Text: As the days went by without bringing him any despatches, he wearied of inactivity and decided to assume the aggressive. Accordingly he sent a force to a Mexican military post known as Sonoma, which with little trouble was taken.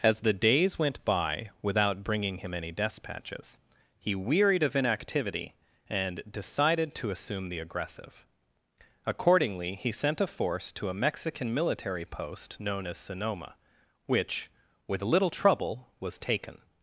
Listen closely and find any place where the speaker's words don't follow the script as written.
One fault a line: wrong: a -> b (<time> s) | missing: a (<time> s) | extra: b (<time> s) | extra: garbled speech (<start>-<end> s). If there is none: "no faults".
no faults